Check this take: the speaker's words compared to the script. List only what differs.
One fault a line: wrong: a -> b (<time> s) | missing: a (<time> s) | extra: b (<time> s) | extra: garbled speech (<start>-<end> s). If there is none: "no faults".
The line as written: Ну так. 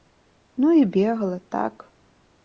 extra: і бегала (0.7 s)